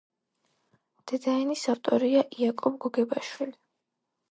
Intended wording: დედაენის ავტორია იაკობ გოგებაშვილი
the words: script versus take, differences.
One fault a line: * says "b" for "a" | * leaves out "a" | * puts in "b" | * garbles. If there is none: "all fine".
all fine